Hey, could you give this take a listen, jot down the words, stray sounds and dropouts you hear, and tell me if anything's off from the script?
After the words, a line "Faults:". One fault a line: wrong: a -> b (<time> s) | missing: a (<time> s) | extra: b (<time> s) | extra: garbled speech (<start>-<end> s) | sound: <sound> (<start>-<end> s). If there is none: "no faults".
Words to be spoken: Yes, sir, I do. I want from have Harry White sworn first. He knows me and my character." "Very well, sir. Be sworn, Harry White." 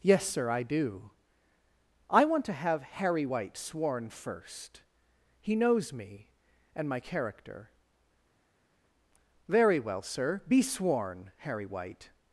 Yes, sir, I do. I want to have Harry White sworn first. He knows me and my character." "Very well, sir. Be sworn, Harry White."
Faults:
wrong: from -> to (2.5 s)